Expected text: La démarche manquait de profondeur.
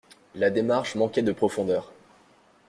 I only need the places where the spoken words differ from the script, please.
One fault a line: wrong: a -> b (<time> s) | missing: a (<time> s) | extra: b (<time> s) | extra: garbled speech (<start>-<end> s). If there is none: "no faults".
no faults